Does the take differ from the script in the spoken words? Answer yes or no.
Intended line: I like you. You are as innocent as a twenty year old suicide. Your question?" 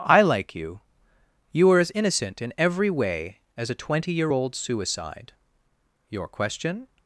yes